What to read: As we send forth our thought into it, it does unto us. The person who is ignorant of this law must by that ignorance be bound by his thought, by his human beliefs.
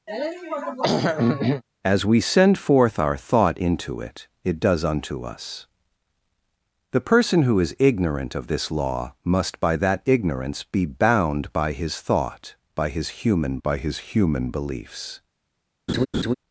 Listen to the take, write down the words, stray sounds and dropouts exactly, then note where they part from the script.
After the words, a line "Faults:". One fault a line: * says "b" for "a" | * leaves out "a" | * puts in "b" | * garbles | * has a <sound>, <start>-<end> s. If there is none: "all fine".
As we send forth our thought into it, it does unto us. The person who is ignorant of this law must by that ignorance be bound by his thought, by his human by his human beliefs.
Faults:
* has a throat clearing, 0.1-1.6 s
* puts in "by his human"
* has a laugh, 15.9-16.3 s